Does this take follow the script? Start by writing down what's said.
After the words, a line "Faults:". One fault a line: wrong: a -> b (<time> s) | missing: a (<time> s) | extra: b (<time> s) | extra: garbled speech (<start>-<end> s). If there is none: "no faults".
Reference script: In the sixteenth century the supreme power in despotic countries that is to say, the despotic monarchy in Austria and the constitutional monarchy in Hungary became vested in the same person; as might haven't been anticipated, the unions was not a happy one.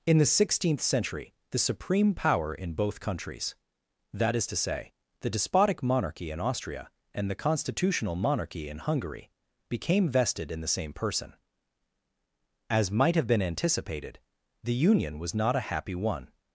In the sixteenth century the supreme power in both countries that is to say, the despotic monarchy in Austria and the constitutional monarchy in Hungary became vested in the same person; as might have been anticipated, the union was not a happy one.
Faults:
wrong: despotic -> both (2.7 s)
wrong: haven't -> have (13.1 s)
wrong: unions -> union (14.7 s)